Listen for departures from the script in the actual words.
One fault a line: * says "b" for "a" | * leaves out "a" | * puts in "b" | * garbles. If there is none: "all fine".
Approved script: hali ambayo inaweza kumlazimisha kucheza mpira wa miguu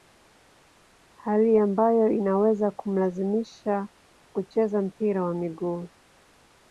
all fine